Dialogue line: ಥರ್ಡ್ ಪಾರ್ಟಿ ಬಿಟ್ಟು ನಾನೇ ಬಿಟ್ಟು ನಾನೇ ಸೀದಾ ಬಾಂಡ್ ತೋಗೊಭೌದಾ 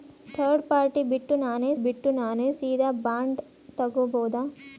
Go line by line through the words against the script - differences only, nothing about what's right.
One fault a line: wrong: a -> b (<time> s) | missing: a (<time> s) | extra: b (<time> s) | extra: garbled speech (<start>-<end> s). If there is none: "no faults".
no faults